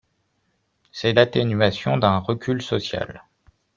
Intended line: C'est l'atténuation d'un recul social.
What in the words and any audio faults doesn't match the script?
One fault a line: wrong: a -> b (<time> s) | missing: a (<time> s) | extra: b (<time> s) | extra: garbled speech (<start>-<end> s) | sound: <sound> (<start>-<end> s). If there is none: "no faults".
no faults